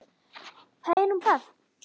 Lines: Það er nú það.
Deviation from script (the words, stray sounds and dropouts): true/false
true